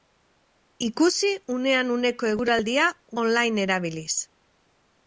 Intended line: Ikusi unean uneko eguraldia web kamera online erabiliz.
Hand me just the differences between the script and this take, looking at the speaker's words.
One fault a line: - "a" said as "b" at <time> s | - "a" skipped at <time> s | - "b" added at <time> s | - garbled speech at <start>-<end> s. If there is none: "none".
- "web kamera" skipped at 2.9 s